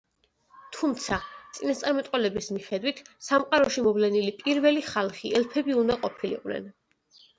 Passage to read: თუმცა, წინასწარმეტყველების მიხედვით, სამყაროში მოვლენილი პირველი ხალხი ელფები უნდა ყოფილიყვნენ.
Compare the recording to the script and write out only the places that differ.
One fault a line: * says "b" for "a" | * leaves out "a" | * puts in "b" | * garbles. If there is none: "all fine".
all fine